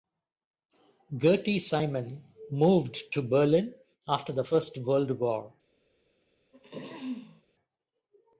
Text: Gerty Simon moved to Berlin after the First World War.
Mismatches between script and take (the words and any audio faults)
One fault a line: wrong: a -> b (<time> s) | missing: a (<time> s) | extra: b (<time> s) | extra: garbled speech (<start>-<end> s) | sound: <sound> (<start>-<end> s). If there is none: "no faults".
sound: throat clearing (6.5-7.4 s)